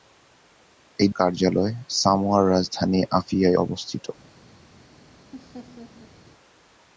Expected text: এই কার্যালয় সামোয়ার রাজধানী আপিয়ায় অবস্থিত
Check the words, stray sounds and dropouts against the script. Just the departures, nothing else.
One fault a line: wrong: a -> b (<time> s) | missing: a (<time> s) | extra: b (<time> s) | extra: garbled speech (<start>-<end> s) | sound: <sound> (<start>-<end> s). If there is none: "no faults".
sound: laugh (5.3-6.1 s)